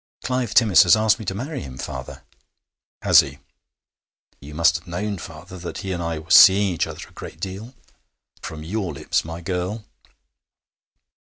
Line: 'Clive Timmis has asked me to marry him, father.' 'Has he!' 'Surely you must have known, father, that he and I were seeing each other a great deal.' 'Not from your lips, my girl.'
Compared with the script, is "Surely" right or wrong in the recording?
wrong